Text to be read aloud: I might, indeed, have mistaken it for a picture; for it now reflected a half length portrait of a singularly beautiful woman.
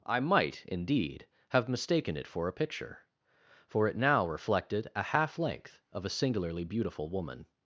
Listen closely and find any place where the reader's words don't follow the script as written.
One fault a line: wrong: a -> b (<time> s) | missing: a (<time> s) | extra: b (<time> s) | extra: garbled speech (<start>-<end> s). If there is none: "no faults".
missing: portrait (5.8 s)